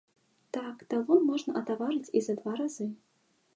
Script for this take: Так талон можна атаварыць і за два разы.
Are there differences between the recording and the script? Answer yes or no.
no